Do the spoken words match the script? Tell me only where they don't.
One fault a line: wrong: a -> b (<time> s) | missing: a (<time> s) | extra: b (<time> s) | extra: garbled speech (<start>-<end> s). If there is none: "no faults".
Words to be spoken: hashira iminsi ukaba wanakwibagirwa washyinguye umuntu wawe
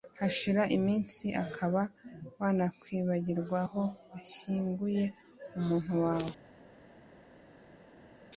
extra: aho (3.6 s)